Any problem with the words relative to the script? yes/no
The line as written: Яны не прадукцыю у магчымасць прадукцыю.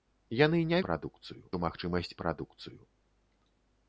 no